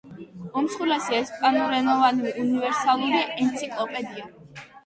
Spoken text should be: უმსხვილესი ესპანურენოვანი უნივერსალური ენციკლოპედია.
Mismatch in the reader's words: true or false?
false